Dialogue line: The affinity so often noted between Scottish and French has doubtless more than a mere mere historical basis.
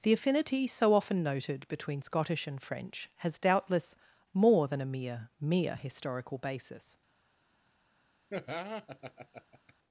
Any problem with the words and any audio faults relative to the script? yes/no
yes